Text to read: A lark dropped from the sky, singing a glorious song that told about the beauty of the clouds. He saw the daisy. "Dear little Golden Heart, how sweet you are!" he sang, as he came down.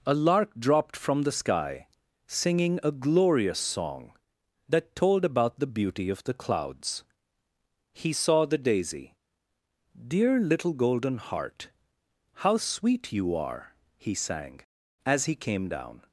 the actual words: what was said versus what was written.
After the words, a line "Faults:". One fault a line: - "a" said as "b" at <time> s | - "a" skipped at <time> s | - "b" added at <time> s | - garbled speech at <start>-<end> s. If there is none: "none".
A lark dropped from the sky, singing a glorious song that told about the beauty of the clouds. He saw the daisy. "Dear little Golden Heart, how sweet you are!" he sang, as he came down.
Faults:
none